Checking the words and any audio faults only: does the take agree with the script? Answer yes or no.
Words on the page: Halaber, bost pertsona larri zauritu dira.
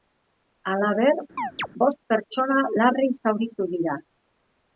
no